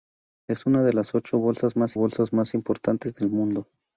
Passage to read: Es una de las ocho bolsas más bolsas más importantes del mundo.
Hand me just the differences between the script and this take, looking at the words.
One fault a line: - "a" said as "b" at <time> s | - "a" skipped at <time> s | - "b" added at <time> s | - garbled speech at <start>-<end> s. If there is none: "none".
none